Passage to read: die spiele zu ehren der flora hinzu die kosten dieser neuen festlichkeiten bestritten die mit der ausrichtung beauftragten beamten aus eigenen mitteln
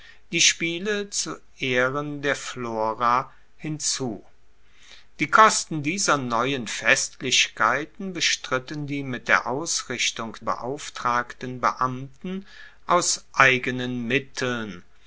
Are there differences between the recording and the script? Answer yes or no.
no